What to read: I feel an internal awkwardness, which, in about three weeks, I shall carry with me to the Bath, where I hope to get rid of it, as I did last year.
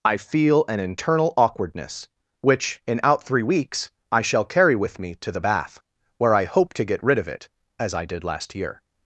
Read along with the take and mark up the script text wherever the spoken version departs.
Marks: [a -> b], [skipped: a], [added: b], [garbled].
I feel an internal awkwardness, which, in [about -> out] three weeks, I shall carry with me to the Bath, where I hope to get rid of it, as I did last year.